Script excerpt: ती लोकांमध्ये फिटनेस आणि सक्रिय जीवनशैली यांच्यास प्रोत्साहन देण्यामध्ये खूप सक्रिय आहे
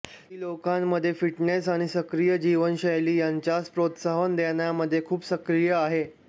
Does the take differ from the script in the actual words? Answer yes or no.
no